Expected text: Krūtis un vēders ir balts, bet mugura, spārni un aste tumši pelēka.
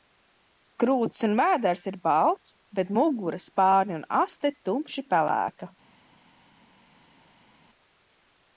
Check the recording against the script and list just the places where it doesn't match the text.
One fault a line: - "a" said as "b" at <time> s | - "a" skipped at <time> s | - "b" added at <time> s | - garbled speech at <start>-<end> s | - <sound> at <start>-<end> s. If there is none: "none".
none